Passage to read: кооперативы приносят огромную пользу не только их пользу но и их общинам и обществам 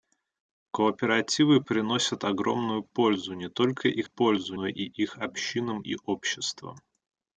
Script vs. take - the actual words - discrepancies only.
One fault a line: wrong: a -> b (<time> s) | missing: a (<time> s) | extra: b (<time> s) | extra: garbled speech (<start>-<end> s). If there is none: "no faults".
no faults